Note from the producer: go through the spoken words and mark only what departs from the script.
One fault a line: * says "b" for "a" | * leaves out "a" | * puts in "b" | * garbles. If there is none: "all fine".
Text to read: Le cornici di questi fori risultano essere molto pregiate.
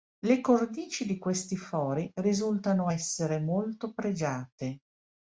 all fine